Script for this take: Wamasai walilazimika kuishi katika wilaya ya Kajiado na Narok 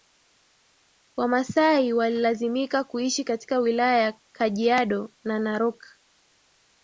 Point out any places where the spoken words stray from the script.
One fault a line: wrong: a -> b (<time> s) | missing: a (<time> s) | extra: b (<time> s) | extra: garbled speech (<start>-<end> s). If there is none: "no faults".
no faults